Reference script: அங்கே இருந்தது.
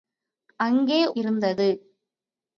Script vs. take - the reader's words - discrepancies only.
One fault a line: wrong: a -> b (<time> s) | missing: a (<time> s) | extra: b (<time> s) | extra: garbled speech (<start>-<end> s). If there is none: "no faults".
no faults